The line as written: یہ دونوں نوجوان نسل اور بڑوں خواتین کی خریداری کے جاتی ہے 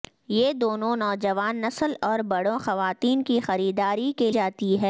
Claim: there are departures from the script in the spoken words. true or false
false